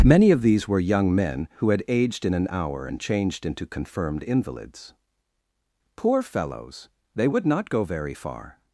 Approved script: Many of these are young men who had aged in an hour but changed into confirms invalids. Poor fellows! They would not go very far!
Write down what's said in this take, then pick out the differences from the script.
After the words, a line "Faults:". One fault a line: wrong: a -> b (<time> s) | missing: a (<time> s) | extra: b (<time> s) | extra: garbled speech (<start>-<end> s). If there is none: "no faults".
Many of these were young men who had aged in an hour and changed into confirmed invalids. Poor fellows! They would not go very far!
Faults:
wrong: are -> were (0.7 s)
wrong: but -> and (2.8 s)
wrong: confirms -> confirmed (3.7 s)